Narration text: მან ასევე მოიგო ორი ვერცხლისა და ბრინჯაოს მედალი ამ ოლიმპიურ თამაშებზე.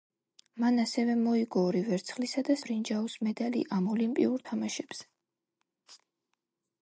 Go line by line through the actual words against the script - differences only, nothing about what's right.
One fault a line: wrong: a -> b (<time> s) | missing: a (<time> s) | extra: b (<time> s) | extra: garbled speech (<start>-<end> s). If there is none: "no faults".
no faults